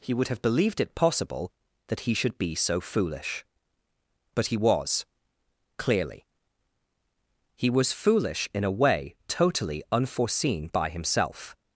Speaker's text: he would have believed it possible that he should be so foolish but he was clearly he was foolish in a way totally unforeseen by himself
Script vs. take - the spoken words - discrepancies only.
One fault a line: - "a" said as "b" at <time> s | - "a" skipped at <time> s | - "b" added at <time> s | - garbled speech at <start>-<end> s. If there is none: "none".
none